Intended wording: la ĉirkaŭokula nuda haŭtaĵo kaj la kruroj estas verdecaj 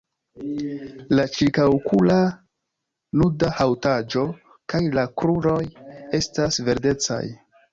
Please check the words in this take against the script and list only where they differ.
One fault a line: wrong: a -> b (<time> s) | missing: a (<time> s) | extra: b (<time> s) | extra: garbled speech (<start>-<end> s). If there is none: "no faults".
no faults